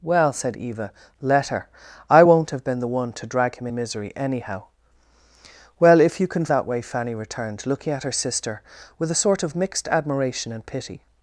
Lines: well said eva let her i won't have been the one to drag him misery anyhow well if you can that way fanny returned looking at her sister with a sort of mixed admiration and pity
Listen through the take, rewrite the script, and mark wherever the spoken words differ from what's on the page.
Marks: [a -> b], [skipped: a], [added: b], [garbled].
well said eva let her i won't have been the one to drag him misery anyhow well if you can that way fanny returned looking at her sister with a sort of mixed admiration and pity